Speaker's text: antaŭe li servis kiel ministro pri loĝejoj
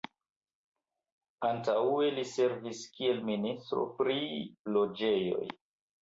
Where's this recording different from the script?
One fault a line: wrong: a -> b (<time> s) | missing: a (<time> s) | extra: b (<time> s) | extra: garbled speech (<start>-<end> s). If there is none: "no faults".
no faults